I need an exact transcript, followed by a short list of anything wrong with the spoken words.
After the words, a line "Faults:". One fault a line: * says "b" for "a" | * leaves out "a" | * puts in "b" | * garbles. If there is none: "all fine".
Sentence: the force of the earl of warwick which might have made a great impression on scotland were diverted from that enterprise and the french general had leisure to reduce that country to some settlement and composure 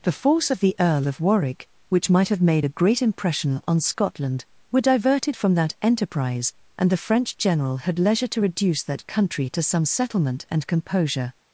the force of the earl of warwick which might have made a great impression on scotland were diverted from that enterprise and the french general had leisure to reduce that country to some settlement and composure
Faults:
all fine